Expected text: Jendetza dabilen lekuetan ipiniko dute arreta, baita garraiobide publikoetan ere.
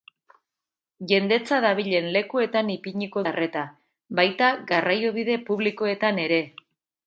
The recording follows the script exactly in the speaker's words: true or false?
false